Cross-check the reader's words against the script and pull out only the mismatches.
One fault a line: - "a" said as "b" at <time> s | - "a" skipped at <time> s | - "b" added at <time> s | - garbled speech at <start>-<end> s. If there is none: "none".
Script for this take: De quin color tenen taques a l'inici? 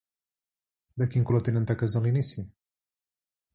none